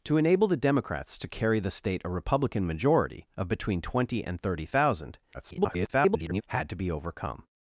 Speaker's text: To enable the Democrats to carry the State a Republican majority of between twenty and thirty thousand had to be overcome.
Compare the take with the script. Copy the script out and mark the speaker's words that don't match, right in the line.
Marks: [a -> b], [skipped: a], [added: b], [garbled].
To enable the Democrats to carry the State a Republican majority of between twenty and thirty thousand [garbled] had to be overcome.